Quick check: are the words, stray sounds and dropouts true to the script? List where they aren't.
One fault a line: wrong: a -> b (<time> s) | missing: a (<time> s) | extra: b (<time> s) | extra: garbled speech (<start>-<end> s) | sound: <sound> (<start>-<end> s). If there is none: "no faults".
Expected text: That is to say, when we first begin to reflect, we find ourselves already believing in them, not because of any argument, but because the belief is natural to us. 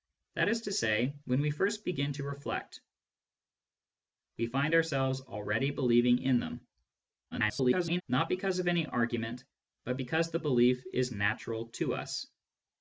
extra: garbled speech (7.3-8.0 s)